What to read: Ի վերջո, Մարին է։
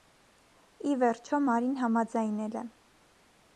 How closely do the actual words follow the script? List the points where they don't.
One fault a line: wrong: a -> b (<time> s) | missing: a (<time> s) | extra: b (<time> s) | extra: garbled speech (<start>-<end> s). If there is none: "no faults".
extra: համաձայնել (1.8 s)